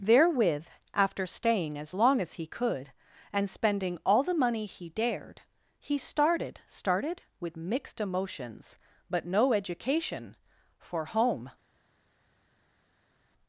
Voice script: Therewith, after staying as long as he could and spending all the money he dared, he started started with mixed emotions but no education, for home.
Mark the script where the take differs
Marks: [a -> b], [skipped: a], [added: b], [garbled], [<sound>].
Therewith, after staying as long as he could and spending all the money he dared, he started started with mixed emotions but no education, for home.